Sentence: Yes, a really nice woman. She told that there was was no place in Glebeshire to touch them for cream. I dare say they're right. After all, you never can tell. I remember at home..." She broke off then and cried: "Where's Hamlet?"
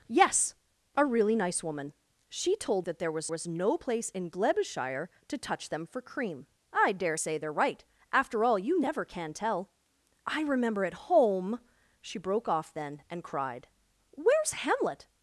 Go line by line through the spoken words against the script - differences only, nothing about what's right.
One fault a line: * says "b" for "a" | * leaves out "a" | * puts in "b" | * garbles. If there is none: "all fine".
all fine